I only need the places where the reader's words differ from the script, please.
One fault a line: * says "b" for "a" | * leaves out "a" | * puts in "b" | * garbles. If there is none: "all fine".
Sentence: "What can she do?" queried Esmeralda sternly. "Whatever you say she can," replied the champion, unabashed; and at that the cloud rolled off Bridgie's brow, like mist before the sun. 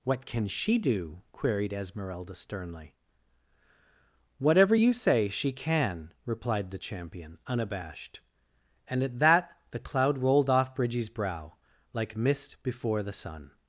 all fine